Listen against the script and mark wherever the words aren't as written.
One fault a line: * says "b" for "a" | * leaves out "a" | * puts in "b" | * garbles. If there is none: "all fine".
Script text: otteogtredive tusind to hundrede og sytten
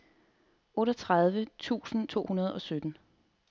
all fine